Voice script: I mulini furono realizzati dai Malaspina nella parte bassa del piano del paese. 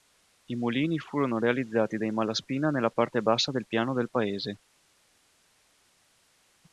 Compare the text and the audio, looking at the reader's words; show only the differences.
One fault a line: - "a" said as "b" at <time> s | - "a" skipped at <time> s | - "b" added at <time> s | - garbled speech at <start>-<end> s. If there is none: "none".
none